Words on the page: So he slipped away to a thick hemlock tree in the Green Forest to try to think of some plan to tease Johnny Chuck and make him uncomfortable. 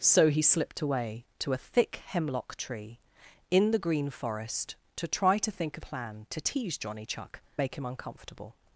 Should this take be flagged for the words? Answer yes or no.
yes